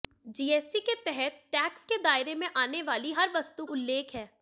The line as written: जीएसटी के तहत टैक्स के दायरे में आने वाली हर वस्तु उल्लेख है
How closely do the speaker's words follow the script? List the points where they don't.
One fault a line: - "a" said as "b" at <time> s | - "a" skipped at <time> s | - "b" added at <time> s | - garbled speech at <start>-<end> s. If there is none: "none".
none